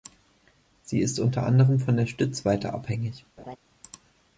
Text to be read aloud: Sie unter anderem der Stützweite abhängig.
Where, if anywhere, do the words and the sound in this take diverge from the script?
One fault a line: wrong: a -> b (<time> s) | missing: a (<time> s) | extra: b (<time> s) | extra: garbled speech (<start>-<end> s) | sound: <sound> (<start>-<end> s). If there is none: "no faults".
extra: ist (1.0 s)
extra: von (1.8 s)
sound: laugh (3.4-3.6 s)